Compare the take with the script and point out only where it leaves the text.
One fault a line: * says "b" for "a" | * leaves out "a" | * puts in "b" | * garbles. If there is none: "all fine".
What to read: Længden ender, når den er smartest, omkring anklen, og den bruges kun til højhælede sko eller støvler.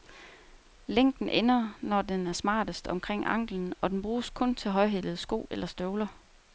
all fine